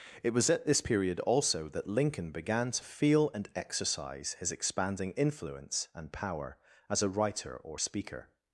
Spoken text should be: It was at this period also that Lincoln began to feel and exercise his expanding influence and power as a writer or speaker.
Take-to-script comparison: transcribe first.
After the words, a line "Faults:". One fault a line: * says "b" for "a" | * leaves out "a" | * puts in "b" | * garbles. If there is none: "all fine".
It was at this period also that Lincoln began to feel and exercise his expanding influence and power as a writer or speaker.
Faults:
all fine